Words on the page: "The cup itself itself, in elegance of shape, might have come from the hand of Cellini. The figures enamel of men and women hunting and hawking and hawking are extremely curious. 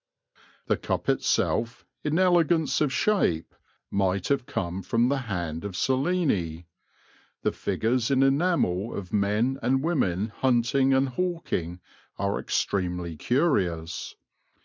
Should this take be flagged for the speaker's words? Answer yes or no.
yes